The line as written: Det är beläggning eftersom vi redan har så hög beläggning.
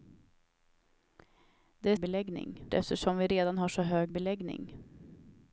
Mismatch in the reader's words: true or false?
false